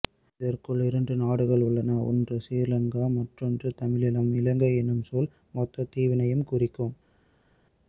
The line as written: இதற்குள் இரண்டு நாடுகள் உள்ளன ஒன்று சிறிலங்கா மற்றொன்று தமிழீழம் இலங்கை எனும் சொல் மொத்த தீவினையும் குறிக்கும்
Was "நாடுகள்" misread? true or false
false